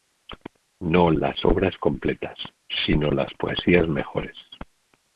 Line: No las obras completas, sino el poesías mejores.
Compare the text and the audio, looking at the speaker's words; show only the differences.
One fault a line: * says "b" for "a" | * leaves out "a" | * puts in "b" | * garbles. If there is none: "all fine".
* says "las" for "el"